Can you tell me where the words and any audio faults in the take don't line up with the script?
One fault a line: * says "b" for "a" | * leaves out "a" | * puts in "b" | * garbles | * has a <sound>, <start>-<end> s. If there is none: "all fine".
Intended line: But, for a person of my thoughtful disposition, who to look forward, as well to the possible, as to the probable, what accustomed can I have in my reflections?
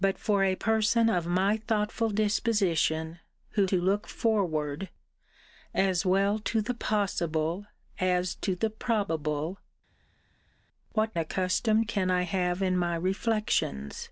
all fine